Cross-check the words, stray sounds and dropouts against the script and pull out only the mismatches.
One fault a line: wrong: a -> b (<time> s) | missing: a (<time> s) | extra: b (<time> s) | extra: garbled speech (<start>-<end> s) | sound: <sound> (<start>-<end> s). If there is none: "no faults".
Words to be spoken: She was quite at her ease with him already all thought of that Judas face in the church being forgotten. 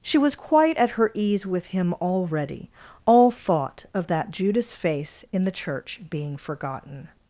no faults